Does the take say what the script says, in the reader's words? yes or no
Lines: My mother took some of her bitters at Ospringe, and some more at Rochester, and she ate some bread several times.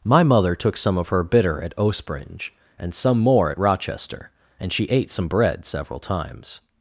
no